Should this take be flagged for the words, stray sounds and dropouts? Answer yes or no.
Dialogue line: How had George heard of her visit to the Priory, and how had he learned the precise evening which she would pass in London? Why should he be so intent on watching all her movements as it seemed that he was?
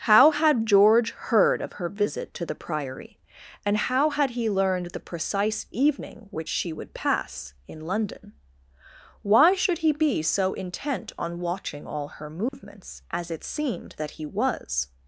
yes